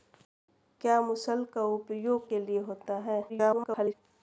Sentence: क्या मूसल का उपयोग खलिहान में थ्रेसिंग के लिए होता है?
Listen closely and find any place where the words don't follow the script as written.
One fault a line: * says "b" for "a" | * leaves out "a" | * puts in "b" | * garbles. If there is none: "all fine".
* leaves out "खलिहान में थ्रेसिंग"
* garbles